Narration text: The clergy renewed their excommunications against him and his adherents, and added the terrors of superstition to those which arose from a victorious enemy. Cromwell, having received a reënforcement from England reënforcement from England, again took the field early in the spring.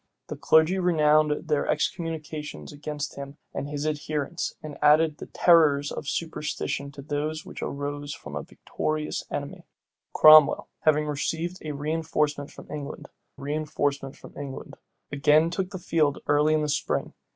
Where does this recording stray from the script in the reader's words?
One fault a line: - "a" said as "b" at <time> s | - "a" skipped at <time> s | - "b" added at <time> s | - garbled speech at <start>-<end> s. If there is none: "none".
none